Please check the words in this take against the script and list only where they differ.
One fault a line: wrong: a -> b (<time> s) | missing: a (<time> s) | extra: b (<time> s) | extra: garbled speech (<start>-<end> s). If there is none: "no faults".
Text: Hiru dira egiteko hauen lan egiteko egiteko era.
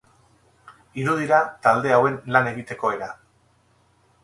wrong: egiteko -> talde (1.7 s)
missing: egiteko (2.9 s)